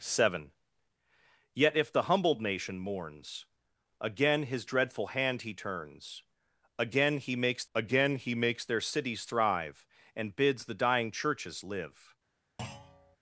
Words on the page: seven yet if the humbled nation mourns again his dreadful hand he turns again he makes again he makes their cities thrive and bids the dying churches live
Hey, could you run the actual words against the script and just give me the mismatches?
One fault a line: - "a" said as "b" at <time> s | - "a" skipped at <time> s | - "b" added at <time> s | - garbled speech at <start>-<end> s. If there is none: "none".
none